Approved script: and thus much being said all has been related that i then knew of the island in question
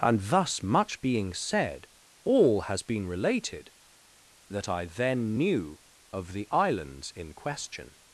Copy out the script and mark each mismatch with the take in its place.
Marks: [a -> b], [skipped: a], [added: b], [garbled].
and thus much being said all has been related that i then knew of the [island -> islands] in question